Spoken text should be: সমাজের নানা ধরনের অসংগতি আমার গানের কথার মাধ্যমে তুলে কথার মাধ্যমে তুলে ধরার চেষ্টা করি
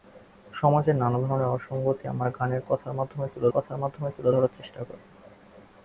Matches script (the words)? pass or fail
pass